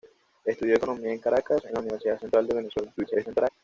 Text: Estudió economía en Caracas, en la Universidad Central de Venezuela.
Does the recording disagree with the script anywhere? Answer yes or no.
yes